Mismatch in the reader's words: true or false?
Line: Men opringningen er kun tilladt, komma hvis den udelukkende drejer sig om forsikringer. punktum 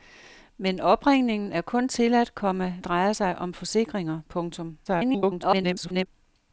true